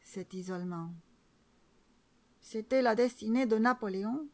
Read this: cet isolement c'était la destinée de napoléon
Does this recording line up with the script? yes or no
yes